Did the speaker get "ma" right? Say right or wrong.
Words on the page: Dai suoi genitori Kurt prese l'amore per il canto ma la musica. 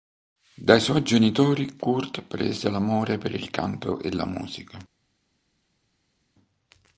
wrong